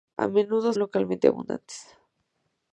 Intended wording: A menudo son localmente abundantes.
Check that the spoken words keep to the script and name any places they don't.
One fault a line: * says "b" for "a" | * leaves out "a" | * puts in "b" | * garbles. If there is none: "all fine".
* leaves out "son"